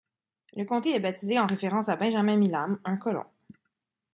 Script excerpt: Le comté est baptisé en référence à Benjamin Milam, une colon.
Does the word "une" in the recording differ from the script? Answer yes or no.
yes